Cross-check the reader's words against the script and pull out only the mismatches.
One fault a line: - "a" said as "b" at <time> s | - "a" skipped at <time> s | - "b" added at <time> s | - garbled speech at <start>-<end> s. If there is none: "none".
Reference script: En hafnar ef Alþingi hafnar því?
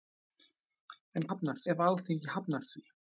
none